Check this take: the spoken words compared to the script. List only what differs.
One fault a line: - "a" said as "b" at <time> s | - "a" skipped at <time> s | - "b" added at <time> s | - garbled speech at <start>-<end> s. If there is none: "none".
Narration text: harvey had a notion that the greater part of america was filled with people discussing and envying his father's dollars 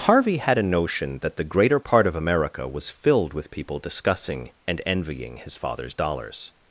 none